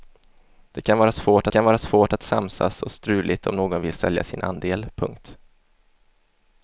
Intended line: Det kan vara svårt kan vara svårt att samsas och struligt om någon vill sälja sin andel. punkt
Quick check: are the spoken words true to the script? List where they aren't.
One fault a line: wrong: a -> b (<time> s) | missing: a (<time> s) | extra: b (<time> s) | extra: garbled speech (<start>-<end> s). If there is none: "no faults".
no faults